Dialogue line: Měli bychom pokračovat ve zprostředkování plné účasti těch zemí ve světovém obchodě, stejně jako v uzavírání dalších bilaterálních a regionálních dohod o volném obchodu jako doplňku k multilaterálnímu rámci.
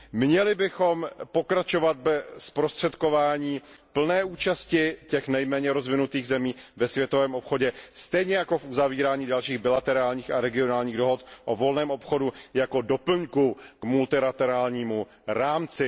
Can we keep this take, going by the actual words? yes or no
no